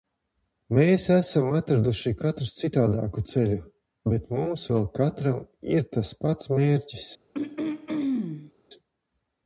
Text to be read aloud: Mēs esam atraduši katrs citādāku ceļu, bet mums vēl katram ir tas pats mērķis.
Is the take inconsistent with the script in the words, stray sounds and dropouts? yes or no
yes